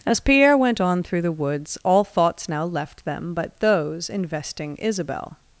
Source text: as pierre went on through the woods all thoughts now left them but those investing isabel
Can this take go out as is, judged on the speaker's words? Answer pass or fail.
pass